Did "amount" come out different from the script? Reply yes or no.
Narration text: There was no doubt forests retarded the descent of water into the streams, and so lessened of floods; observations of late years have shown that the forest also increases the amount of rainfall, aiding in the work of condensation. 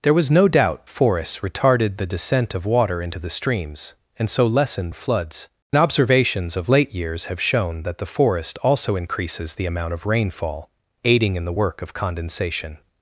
no